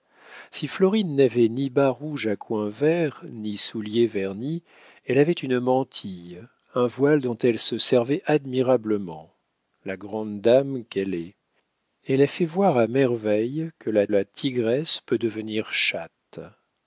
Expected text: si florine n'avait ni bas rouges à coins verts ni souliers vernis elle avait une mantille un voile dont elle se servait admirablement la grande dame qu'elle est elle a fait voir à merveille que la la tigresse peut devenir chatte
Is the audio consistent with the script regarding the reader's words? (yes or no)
yes